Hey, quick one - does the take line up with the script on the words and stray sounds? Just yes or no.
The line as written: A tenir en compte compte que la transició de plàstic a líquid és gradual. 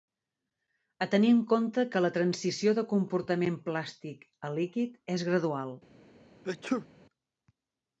no